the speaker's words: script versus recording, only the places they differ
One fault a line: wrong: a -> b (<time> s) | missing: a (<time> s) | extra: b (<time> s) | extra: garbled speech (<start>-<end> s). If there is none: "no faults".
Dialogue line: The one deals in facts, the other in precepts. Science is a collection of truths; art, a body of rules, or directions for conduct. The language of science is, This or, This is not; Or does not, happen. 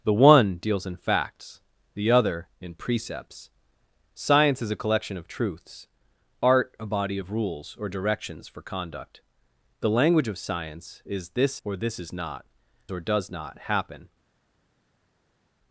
no faults